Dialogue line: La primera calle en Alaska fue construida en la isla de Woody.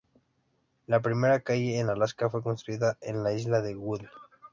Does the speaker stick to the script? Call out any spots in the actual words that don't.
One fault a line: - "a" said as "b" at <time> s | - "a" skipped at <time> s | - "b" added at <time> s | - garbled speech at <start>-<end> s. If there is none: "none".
none